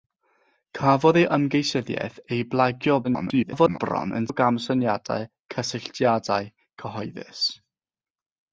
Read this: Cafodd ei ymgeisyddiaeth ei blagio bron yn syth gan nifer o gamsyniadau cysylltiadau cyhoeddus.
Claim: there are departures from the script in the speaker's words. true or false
true